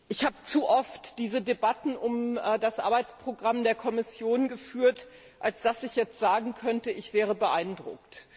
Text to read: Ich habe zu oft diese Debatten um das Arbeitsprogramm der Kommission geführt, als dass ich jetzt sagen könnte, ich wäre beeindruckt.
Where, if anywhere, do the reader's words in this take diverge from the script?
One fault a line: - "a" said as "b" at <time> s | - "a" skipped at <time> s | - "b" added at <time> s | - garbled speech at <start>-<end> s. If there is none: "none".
none